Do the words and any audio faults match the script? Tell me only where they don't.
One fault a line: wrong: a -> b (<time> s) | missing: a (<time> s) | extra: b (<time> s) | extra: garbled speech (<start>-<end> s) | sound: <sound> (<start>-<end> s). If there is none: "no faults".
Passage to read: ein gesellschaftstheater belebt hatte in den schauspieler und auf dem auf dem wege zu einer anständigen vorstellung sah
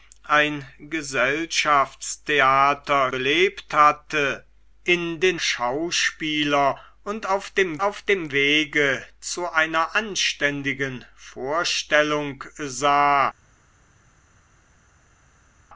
no faults